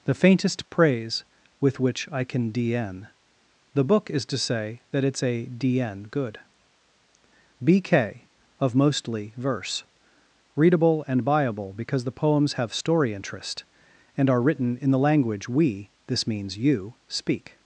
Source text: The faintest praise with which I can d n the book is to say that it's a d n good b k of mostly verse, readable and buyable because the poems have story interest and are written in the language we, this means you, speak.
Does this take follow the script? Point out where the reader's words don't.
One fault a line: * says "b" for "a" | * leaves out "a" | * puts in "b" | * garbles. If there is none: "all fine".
all fine